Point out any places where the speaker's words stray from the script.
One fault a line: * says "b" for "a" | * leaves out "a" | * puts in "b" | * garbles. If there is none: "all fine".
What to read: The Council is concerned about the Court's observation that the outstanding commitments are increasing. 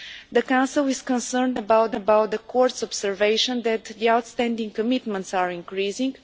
* puts in "about"